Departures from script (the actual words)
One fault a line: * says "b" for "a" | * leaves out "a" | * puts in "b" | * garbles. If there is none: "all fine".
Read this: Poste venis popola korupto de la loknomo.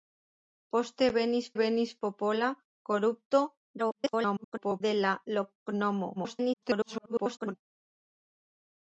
* puts in "venis"
* garbles
* garbles